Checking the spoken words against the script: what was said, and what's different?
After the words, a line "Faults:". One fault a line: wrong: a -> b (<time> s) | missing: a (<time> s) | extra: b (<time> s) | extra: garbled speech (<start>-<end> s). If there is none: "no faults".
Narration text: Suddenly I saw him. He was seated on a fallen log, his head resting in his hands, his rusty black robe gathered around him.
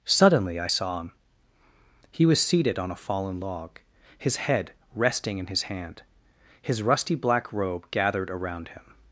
Suddenly I saw him. He was seated on a fallen log, his head resting in his hand, his rusty black robe gathered around him.
Faults:
wrong: hands -> hand (5.6 s)